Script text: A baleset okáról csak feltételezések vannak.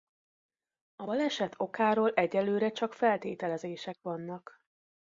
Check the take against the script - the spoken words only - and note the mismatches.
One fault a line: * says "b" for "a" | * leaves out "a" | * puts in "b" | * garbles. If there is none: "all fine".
* puts in "egyelőre"